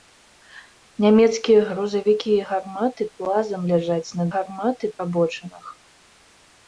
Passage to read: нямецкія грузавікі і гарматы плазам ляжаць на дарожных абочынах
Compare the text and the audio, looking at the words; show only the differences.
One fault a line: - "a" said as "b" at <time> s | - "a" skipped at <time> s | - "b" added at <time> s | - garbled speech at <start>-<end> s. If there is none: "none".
- "дарожных" said as "гарматы" at 4.4 s